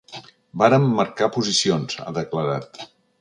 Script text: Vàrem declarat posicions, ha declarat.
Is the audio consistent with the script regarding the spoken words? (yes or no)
no